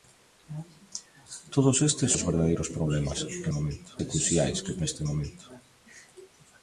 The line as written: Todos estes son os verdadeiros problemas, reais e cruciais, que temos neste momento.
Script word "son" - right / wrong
wrong